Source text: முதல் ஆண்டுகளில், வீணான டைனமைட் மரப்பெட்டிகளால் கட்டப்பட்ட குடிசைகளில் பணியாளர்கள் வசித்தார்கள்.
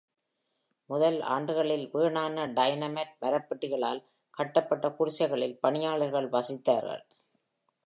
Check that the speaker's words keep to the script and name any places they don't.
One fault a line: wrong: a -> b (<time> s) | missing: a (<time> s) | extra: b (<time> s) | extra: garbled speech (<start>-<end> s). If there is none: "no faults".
no faults